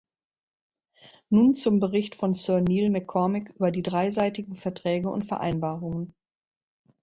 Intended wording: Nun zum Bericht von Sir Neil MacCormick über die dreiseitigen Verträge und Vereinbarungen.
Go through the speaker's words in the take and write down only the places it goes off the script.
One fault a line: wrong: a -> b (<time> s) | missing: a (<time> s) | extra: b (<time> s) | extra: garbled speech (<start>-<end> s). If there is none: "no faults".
no faults